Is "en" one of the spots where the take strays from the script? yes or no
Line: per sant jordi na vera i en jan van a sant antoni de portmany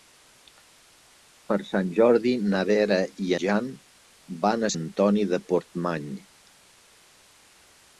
yes